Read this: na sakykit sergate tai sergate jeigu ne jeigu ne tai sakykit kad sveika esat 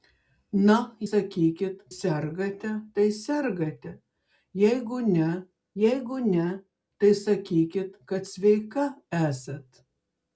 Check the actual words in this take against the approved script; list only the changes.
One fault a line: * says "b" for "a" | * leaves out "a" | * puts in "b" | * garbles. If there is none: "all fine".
all fine